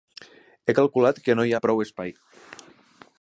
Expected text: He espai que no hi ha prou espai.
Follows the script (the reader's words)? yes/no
no